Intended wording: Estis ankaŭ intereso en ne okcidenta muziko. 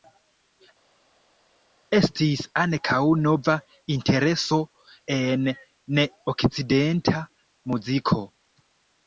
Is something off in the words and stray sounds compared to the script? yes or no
yes